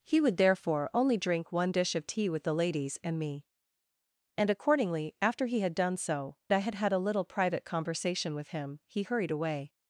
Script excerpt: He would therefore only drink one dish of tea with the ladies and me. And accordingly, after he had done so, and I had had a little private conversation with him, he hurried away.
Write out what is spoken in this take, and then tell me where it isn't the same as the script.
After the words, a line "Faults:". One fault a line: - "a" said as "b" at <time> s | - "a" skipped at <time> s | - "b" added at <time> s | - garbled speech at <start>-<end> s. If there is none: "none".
He would therefore only drink one dish of tea with the ladies and me. And accordingly, after he had done so, I had had a little private conversation with him, he hurried away.
Faults:
- "and" skipped at 6.4 s